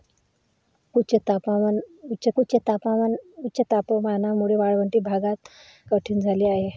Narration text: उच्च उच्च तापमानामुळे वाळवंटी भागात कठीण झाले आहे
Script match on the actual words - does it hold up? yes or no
yes